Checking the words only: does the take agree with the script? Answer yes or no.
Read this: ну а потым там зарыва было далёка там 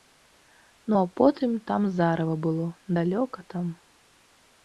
yes